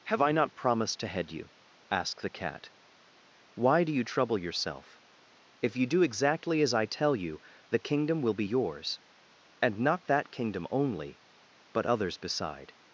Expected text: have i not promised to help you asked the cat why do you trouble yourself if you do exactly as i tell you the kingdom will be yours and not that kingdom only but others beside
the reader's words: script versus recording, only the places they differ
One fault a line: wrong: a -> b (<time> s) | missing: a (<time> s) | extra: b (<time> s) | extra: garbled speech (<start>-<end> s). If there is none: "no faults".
wrong: help -> head (1.1 s)